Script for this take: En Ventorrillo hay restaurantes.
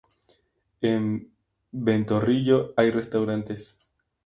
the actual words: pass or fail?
pass